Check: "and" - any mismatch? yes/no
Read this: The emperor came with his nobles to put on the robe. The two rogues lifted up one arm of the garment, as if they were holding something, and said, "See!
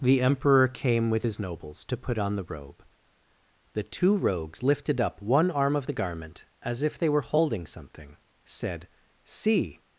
yes